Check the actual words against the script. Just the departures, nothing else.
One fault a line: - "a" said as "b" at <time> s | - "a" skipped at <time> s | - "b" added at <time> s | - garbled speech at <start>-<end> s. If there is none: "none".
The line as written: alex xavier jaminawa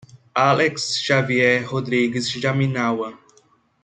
- "rodrigues" added at 1.7 s